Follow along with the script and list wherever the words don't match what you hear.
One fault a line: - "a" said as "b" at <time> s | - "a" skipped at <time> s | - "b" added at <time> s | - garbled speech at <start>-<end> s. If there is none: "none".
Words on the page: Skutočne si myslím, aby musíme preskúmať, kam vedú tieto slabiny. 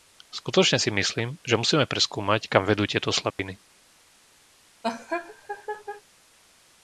- "aby" said as "že" at 1.4 s